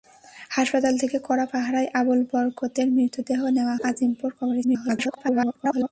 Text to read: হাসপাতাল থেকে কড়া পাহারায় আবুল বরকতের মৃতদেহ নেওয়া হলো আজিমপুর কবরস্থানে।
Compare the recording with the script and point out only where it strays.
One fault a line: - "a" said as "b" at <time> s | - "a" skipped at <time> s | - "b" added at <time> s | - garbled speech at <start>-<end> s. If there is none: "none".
- "হলো" skipped at 3.8 s
- garbled speech at 4.6-5.9 s